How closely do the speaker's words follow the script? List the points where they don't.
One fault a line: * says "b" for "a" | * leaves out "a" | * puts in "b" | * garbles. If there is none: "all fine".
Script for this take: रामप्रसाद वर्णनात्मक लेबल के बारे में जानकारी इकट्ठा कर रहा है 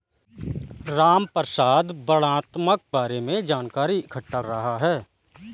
* leaves out "लेबल के"
* leaves out "कर"